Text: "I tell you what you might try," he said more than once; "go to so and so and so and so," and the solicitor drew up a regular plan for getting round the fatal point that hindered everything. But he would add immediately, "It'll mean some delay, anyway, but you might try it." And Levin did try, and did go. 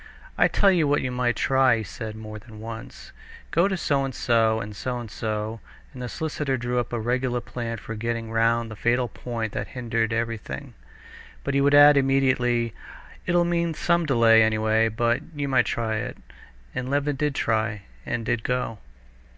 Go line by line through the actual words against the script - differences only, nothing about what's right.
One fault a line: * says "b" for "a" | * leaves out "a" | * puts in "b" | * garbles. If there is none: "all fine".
all fine